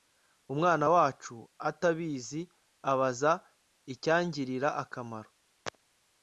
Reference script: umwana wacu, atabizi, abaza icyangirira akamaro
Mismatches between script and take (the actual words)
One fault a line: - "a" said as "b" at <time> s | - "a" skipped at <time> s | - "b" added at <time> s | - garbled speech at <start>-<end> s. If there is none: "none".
none